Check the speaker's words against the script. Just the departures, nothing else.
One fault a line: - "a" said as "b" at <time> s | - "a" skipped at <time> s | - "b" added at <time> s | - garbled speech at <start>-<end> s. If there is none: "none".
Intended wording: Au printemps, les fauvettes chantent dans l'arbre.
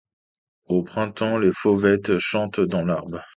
none